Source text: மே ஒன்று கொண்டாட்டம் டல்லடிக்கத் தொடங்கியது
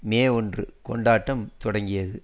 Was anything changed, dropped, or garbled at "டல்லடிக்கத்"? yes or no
yes